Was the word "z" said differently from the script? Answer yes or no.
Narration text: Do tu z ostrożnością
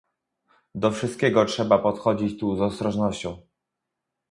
no